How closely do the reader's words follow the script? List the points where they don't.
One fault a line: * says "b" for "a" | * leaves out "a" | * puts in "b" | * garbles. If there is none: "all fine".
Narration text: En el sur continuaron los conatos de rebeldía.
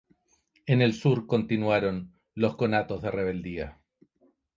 all fine